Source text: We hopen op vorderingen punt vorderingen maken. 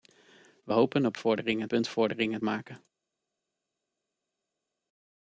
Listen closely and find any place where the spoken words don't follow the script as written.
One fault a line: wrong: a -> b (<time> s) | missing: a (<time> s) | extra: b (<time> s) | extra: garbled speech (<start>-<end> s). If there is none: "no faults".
no faults